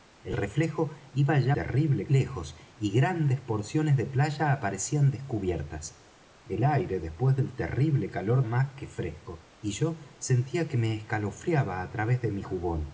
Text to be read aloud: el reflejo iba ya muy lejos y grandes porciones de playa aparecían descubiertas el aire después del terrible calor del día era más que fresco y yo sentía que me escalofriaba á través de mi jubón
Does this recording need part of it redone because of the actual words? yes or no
yes